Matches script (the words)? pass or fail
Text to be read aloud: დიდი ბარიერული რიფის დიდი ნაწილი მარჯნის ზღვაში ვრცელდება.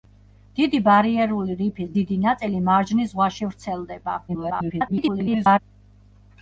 fail